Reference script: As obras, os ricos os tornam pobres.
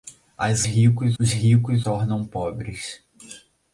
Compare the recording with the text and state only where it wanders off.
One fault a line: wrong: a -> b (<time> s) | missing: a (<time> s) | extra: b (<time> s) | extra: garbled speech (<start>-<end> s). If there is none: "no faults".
wrong: obras -> ricos (0.6 s)
missing: os (1.9 s)